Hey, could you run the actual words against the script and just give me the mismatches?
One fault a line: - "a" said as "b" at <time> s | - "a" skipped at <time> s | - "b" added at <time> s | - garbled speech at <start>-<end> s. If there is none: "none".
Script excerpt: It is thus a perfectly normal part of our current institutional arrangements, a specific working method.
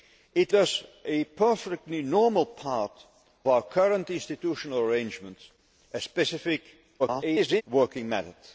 - "is" skipped at 0.5 s
- "of" skipped at 2.9 s
- garbled speech at 7.0-7.6 s